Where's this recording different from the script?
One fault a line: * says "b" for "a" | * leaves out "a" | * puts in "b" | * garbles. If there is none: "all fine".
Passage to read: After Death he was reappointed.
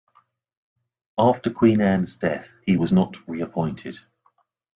* puts in "Queen Anne's"
* puts in "not"